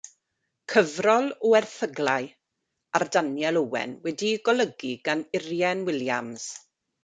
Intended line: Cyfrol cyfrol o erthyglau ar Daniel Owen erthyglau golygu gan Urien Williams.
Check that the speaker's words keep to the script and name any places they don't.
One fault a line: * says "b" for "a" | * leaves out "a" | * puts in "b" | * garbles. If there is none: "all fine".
* leaves out "cyfrol"
* says "wedi'i" for "erthyglau"